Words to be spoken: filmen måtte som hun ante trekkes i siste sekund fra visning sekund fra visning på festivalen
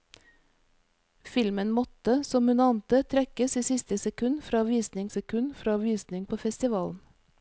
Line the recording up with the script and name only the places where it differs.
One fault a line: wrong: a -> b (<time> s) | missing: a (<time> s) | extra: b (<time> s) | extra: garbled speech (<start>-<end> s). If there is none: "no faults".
no faults